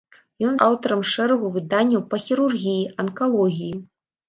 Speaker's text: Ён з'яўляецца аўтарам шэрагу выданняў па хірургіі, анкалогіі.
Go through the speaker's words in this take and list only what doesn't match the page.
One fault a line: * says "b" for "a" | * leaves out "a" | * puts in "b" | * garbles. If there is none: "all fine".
* leaves out "з'яўляецца"